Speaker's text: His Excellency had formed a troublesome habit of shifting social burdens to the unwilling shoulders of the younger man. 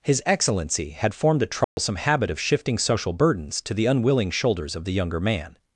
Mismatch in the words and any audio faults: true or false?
true